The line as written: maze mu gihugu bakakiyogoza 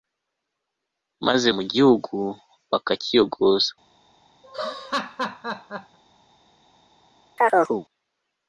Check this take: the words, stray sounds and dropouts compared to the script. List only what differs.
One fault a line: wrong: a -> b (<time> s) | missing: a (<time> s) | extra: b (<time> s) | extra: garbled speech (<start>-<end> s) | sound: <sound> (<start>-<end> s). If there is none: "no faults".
sound: laugh (4.4-6.0 s)
sound: chirp (7.4-7.9 s)